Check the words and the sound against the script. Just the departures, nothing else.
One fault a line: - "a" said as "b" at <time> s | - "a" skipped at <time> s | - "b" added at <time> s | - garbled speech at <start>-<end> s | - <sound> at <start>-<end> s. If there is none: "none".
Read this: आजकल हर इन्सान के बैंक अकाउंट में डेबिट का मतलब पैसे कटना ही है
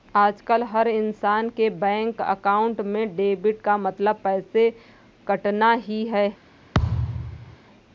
- thud at 6.7-7.6 s